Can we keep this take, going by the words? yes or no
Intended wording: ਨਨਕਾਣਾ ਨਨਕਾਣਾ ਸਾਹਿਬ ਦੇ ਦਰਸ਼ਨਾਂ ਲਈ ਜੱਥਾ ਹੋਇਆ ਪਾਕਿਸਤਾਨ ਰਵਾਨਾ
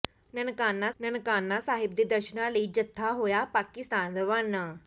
yes